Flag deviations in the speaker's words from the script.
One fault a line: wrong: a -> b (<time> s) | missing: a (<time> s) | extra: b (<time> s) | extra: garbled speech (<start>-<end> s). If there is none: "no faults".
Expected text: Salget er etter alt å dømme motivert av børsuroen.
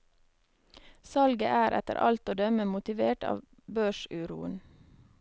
no faults